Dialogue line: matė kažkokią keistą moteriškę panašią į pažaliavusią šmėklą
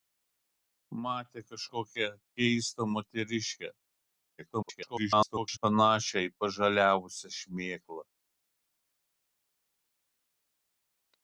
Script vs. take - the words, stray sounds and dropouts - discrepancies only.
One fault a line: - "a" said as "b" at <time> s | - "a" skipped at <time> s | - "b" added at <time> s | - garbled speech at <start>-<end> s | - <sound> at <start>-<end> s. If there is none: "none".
- garbled speech at 4.4-5.6 s